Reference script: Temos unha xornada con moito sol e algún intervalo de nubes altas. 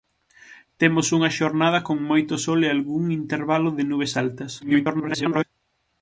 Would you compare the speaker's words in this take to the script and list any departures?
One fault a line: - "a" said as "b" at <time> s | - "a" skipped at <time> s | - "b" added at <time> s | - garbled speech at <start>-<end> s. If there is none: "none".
- garbled speech at 4.6-5.4 s